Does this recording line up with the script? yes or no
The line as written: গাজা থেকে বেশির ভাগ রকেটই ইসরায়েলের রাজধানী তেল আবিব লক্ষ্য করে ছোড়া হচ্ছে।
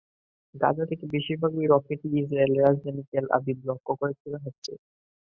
yes